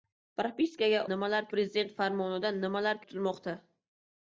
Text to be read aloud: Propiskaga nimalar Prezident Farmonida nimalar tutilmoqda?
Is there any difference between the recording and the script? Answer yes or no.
no